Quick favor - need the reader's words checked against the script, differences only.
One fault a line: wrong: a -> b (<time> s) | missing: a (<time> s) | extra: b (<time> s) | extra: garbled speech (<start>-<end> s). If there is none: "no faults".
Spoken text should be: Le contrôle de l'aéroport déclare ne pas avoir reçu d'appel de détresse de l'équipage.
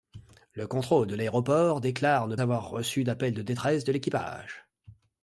missing: pas (2.4 s)